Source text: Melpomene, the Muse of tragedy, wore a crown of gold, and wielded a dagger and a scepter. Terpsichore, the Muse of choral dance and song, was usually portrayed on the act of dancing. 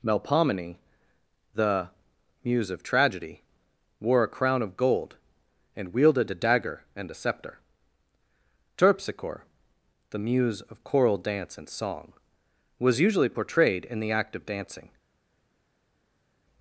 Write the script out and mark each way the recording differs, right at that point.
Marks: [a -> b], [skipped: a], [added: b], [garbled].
Melpomene, the Muse of tragedy, wore a crown of gold, and wielded a dagger and a scepter. Terpsichore, the Muse of choral dance and song, was usually portrayed [on -> in] the act of dancing.